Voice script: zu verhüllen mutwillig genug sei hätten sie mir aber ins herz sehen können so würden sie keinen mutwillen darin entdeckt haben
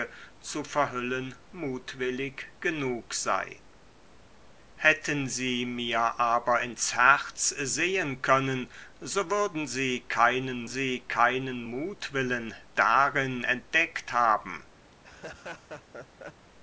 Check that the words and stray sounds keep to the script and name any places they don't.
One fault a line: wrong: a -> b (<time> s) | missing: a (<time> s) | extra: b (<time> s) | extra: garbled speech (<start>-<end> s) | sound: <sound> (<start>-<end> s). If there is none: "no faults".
extra: sie keinen (10.7 s)
sound: laugh (14.9-16.5 s)